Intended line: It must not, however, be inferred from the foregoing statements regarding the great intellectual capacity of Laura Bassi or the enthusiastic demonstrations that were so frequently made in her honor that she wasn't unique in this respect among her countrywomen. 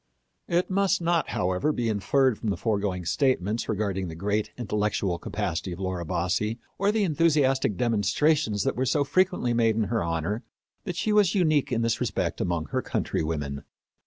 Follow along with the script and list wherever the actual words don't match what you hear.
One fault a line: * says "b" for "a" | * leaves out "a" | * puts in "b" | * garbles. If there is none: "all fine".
* says "was" for "wasn't"